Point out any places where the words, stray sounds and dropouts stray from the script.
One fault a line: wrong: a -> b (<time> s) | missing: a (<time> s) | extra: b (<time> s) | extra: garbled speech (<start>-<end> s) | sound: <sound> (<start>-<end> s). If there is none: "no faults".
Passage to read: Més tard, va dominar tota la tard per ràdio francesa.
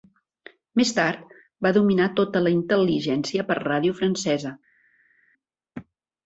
wrong: tard -> intel·ligència (2.5 s)